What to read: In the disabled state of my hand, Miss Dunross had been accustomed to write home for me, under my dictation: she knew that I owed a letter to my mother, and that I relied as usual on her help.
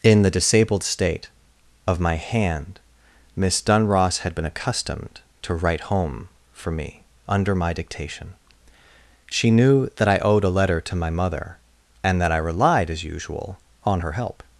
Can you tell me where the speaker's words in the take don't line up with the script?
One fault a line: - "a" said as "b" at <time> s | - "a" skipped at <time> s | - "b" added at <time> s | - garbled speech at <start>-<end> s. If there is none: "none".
none